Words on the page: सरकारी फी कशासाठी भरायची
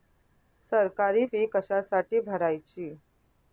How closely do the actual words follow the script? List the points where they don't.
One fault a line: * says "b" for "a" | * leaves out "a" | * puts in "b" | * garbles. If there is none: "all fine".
all fine